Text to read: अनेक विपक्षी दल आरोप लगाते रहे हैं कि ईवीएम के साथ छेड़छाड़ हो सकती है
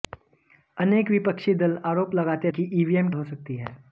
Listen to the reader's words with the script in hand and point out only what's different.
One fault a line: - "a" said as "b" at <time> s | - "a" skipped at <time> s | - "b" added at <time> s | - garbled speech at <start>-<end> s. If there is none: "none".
- "रहे हैं" skipped at 2.5 s
- "के साथ छेड़छाड़" skipped at 3.1 s